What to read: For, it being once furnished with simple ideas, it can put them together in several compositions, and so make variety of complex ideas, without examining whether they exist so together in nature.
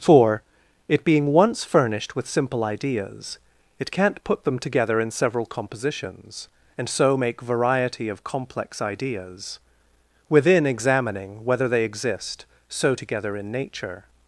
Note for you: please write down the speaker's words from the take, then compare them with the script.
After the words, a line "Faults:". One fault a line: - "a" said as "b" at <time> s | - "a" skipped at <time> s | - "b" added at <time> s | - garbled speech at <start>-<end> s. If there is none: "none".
For, it being once furnished with simple ideas, it can't put them together in several compositions, and so make variety of complex ideas, within examining whether they exist so together in nature.
Faults:
- "can" said as "can't" at 3.9 s
- "without" said as "within" at 10.3 s